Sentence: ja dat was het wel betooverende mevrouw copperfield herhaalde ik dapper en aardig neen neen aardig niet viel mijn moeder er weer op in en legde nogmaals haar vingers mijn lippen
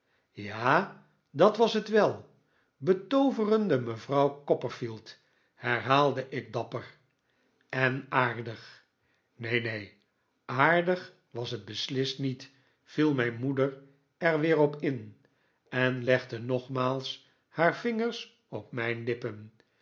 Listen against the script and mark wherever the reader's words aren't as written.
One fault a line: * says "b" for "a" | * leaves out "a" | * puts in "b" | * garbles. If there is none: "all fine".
* puts in "was het beslist"
* puts in "op"